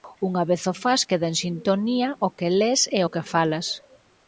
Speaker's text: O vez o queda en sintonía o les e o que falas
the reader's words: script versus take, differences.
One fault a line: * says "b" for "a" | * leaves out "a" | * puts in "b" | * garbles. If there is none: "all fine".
* says "Unha" for "O"
* puts in "fas"
* puts in "que"